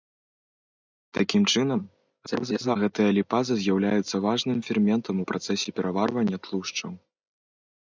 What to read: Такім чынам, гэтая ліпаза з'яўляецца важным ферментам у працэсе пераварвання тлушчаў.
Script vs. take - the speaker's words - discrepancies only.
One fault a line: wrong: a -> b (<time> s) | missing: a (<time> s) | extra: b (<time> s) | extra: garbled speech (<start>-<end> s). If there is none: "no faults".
extra: garbled speech (2.3-2.8 s)